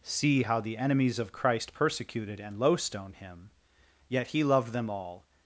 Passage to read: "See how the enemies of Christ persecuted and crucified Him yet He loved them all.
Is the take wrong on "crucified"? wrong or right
wrong